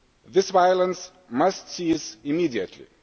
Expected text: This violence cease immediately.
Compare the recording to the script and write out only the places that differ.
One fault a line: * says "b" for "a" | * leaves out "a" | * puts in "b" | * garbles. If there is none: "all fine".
* puts in "must"